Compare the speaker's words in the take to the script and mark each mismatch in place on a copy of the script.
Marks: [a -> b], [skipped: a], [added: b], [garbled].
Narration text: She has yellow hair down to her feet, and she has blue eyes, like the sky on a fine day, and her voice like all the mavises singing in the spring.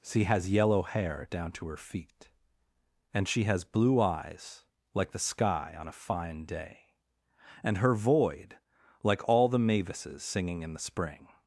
She has yellow hair down to her feet, and she has blue eyes, like the sky on a fine day, and her [voice -> void] like all the mavises singing in the spring.